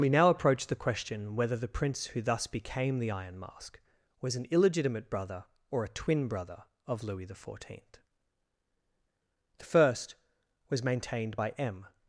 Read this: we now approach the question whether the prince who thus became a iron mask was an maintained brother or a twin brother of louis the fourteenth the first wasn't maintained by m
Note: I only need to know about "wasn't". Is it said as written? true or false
false